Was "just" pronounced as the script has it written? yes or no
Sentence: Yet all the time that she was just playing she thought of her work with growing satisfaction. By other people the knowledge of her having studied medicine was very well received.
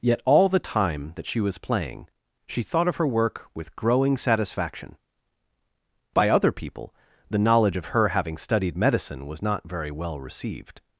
no